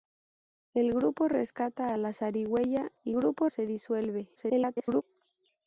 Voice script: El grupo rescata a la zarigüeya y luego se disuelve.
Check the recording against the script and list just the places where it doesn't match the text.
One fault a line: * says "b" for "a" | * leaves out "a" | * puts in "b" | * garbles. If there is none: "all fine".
* says "grupo" for "luego"
* garbles